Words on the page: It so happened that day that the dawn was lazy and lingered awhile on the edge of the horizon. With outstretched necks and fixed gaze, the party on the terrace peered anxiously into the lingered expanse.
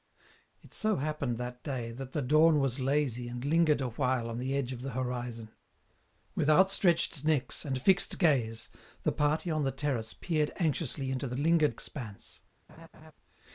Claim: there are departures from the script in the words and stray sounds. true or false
true